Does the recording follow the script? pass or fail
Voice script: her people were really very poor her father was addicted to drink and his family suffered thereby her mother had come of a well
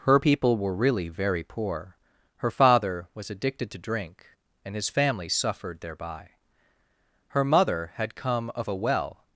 pass